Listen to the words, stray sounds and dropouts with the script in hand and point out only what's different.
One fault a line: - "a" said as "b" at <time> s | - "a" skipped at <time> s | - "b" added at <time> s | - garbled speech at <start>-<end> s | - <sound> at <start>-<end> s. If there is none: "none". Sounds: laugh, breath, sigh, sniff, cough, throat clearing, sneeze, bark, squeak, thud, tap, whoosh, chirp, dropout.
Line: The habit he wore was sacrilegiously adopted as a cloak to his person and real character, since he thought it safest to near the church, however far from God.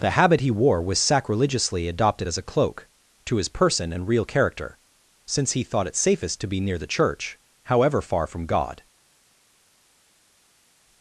- "be" added at 6.5 s